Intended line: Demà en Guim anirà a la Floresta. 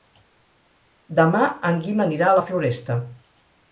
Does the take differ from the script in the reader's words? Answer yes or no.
no